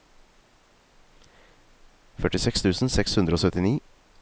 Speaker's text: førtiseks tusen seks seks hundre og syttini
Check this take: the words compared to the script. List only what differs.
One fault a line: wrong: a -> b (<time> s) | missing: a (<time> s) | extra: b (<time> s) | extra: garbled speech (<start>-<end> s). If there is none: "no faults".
missing: seks (3.2 s)